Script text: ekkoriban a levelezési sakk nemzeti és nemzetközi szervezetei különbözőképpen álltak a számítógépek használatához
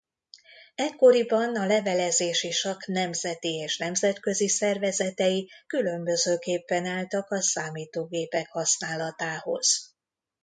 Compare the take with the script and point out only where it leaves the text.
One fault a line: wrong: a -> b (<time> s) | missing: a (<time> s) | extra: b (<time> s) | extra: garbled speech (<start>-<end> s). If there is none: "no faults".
no faults